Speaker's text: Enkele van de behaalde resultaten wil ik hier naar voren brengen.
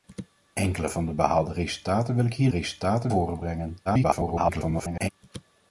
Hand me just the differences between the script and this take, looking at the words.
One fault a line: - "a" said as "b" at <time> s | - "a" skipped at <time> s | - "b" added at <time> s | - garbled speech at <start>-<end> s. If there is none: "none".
- "naar" said as "resultaten" at 2.5 s
- garbled speech at 3.9-5.1 s